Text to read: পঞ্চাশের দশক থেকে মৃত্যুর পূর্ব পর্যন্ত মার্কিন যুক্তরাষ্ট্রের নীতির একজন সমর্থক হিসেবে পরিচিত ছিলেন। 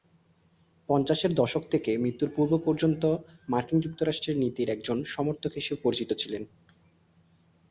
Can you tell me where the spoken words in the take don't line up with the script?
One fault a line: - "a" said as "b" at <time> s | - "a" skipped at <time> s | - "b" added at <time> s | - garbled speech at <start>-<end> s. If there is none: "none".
none